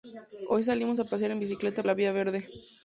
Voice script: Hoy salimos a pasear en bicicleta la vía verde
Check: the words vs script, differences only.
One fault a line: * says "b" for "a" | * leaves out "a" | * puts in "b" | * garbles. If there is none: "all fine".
all fine